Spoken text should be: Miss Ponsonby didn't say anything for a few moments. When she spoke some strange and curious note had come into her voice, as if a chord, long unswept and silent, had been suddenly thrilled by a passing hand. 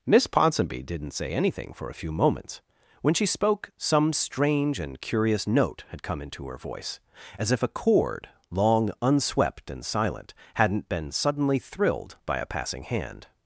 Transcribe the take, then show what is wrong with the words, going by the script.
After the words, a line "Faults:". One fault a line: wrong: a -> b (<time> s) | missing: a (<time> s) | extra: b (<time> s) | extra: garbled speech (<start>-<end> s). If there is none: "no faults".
Miss Ponsonby didn't say anything for a few moments. When she spoke some strange and curious note had come into her voice, as if a chord, long unswept and silent, hadn't been suddenly thrilled by a passing hand.
Faults:
wrong: had -> hadn't (10.5 s)